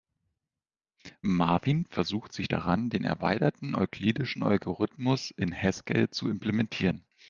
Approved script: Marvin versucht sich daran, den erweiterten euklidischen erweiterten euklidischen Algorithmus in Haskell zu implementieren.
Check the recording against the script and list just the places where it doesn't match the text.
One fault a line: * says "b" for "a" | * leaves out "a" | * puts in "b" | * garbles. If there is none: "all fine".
* leaves out "erweiterten euklidischen"